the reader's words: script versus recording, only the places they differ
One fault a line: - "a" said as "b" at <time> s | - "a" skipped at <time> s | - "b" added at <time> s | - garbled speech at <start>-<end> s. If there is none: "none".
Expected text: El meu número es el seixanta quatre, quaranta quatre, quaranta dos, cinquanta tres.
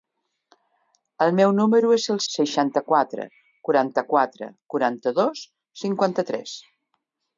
none